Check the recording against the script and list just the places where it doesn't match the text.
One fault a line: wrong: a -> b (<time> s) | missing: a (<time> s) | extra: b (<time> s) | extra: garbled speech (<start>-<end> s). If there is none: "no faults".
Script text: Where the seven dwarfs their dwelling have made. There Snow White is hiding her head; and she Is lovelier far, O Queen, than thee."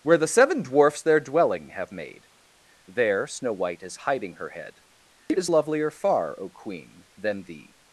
wrong: and she -> it (5.3 s)